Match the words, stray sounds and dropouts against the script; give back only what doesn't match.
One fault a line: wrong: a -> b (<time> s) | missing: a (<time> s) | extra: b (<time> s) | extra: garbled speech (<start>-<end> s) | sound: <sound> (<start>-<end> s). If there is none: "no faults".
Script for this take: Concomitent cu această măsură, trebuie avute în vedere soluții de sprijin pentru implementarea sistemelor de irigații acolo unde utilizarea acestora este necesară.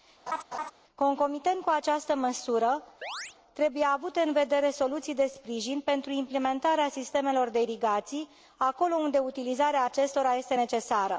sound: laugh (0.3-0.7 s)
sound: chirp (3.0-3.4 s)